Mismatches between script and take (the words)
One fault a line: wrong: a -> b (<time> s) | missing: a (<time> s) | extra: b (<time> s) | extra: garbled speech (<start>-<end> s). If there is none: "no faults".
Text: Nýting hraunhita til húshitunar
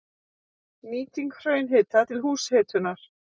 no faults